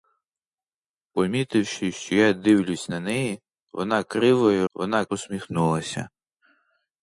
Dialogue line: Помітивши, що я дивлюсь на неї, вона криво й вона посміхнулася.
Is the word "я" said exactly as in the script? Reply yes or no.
yes